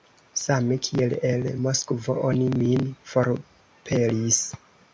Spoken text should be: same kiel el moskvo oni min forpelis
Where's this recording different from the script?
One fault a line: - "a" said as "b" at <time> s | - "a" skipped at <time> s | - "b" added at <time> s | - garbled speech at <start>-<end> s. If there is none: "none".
none